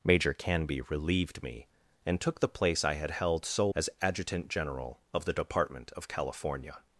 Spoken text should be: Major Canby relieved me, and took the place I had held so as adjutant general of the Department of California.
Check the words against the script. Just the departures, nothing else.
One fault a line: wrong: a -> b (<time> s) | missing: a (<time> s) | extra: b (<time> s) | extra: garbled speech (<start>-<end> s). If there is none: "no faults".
no faults